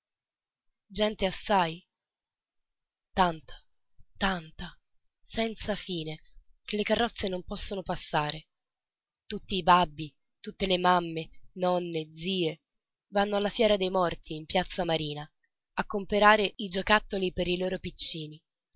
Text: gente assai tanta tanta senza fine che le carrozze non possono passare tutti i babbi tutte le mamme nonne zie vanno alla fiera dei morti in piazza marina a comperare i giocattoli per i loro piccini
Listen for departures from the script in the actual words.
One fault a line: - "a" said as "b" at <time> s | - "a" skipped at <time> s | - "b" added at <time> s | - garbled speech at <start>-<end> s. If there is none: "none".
none